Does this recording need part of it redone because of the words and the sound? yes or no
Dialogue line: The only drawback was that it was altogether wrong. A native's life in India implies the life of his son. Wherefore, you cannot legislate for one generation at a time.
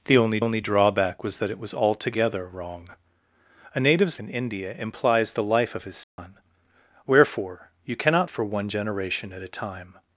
yes